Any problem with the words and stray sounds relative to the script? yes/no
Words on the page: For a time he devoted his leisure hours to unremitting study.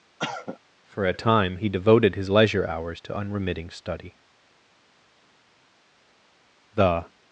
yes